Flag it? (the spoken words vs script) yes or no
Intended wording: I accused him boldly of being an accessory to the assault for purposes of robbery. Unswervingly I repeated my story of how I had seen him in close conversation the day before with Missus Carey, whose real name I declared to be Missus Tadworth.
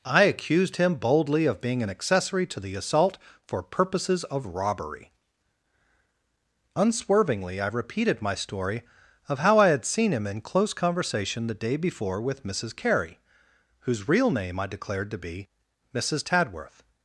no